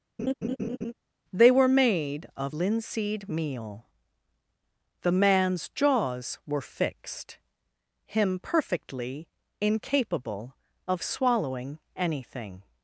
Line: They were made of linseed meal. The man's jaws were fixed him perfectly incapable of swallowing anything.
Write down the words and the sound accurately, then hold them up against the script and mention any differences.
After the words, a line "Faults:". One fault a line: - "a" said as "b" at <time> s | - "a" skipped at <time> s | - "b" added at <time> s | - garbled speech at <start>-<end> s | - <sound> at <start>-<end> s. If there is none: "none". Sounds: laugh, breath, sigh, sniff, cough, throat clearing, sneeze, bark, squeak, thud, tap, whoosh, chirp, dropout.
They were made of linseed meal. The man's jaws were fixed him perfectly incapable of swallowing anything.
Faults:
- laugh at 0.2-0.9 s